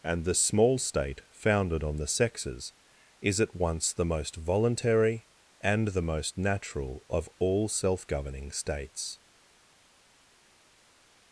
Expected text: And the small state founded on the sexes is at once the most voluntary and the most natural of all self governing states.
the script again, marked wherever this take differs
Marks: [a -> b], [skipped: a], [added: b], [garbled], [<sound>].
And the small state founded on the sexes is at once the most voluntary and the most natural of all self governing states.